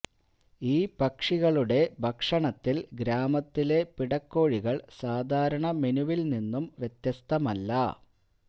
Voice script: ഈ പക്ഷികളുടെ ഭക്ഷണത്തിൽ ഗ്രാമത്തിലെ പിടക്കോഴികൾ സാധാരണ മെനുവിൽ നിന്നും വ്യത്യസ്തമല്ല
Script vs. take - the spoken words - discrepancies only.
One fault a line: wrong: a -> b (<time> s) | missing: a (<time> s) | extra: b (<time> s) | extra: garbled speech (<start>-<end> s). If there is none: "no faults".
no faults